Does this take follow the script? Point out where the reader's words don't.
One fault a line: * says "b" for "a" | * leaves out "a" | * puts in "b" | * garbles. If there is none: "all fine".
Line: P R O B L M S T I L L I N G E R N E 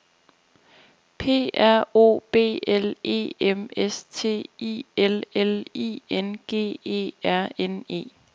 * puts in "E"